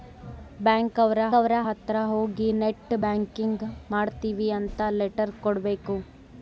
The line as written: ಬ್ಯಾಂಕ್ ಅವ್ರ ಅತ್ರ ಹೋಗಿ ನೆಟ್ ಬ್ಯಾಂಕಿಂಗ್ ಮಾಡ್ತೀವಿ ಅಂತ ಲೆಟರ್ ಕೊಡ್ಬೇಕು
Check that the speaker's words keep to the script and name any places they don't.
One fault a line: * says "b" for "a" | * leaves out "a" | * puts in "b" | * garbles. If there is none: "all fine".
* puts in "ಅವ್ರ"